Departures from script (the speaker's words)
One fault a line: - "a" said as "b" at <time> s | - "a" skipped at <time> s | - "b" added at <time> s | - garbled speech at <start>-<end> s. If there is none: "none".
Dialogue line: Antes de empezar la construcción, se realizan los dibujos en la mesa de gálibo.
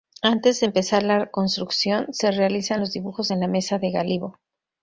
none